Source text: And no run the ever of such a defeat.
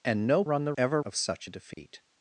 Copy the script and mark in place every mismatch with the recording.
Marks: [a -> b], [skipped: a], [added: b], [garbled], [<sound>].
And no run the ever of such a defeat. [dropout]